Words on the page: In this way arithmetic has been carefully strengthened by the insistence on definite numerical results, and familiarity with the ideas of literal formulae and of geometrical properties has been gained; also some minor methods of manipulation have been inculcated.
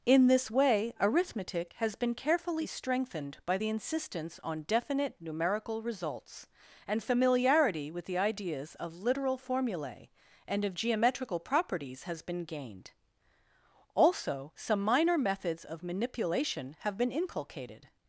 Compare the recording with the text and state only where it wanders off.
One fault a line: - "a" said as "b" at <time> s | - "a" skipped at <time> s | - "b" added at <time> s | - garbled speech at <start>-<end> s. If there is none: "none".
none